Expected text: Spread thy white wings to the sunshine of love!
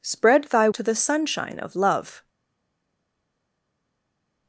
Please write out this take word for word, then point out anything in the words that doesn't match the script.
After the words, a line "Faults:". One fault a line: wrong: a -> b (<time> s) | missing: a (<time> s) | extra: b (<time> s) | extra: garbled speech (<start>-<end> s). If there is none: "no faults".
Spread thy to the sunshine of love!
Faults:
missing: white wings (0.7 s)